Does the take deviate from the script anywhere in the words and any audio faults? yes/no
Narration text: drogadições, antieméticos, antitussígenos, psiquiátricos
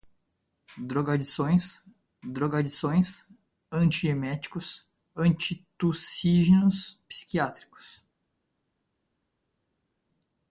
yes